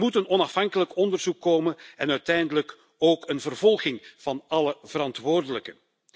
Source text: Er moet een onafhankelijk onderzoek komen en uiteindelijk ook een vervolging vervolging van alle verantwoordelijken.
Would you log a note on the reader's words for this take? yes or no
yes